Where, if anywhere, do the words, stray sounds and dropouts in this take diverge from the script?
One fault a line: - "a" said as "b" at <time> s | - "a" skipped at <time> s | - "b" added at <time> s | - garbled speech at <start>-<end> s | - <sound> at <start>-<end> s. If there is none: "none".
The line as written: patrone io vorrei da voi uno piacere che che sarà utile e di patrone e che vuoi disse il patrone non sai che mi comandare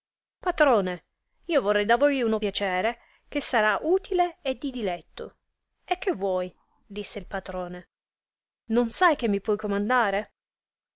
- "che" skipped at 3.4 s
- "patrone" said as "diletto" at 4.7 s
- "puoi" added at 9.4 s